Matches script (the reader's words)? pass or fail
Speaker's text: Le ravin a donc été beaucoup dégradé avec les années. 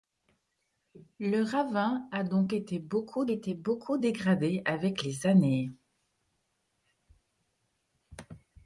fail